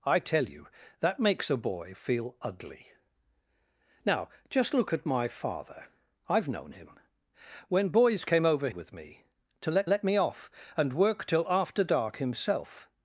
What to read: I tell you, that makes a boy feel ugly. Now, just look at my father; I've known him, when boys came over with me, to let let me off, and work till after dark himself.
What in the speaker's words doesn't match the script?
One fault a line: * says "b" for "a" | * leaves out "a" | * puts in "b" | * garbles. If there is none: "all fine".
all fine